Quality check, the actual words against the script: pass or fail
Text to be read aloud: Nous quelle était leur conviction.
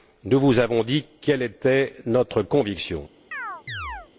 fail